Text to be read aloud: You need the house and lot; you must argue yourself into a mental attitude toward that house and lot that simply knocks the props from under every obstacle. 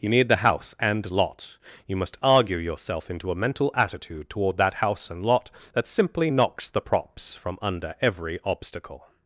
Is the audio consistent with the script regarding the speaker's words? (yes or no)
yes